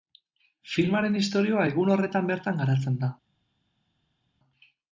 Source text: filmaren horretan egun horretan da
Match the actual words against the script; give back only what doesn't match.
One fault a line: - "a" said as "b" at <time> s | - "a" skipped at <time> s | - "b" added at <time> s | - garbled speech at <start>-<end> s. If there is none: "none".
- "horretan" said as "istorioa" at 1.2 s
- "bertan garatzen" added at 2.3 s